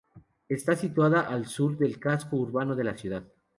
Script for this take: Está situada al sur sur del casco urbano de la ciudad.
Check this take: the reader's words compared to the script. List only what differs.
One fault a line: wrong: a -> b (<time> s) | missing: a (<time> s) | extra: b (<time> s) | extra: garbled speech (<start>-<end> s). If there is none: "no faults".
missing: sur (1.8 s)